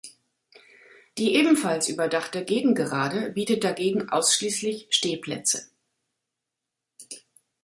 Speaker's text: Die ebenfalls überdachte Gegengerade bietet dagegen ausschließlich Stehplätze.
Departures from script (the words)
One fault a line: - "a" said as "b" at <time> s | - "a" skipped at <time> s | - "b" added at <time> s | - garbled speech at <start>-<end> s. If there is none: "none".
none